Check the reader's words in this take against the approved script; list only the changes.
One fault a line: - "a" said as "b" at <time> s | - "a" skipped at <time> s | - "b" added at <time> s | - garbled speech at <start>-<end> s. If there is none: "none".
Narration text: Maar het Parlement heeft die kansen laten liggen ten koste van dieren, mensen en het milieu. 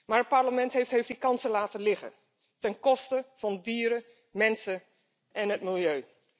- "heeft" added at 0.9 s